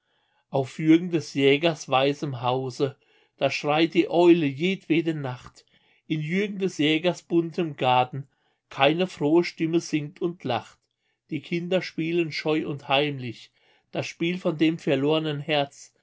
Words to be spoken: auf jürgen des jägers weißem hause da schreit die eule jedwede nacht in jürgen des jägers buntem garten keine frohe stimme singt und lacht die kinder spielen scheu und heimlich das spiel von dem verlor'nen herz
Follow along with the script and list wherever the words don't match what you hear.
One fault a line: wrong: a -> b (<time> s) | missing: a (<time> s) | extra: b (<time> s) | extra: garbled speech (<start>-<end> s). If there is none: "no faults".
no faults